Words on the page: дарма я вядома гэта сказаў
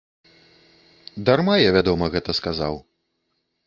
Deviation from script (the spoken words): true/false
false